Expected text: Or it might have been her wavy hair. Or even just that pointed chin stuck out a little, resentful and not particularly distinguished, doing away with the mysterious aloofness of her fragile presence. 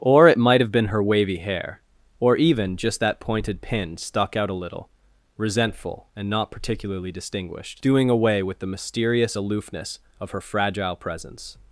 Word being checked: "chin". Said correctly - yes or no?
no